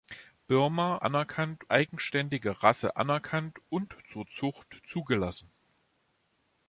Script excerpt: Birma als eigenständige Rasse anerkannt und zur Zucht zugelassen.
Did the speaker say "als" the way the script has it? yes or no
no